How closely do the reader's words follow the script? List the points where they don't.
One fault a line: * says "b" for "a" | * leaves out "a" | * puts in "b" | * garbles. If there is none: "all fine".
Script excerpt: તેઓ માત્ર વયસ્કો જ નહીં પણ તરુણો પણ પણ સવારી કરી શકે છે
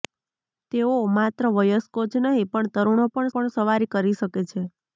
all fine